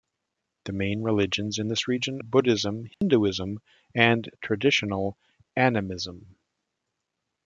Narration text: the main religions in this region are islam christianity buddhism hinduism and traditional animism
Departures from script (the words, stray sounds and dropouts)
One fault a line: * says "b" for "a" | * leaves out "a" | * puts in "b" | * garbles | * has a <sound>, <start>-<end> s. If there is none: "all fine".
* leaves out "are islam christianity"
* has a dropout, 2.9-3.0 s